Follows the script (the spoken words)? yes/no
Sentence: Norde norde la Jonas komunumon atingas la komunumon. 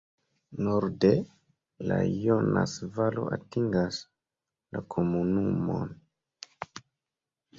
no